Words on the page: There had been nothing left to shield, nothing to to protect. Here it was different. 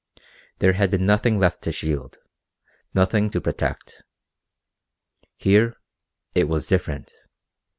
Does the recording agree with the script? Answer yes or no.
no